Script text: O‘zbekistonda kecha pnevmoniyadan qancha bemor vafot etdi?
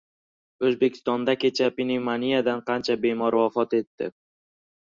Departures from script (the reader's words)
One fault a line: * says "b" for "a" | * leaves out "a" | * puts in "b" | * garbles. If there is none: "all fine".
all fine